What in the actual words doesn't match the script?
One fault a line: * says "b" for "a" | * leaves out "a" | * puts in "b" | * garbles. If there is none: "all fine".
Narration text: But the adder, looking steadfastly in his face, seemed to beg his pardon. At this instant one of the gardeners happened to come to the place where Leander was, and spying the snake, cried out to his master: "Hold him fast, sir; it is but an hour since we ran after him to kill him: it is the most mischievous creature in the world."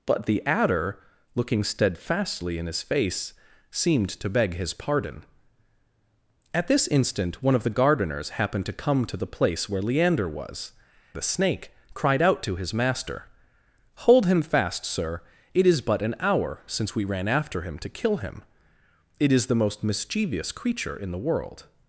* leaves out "and spying"